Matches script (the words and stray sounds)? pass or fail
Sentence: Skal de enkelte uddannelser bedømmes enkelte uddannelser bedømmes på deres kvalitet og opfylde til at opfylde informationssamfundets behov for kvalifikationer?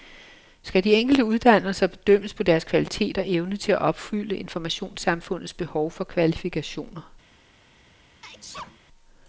fail